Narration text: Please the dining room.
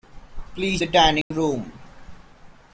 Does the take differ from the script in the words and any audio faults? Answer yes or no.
yes